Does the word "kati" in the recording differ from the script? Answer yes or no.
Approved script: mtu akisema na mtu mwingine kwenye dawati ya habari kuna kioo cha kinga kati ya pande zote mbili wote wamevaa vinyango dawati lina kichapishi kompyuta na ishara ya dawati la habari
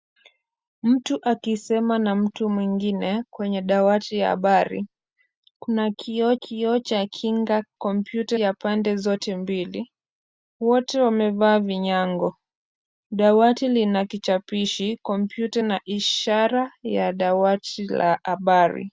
yes